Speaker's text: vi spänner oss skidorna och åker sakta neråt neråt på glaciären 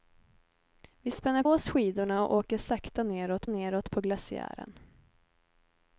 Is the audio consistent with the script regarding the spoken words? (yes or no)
yes